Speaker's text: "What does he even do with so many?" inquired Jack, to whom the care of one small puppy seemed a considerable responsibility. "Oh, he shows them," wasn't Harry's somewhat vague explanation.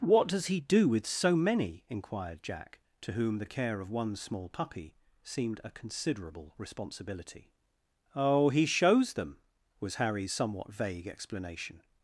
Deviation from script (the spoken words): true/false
true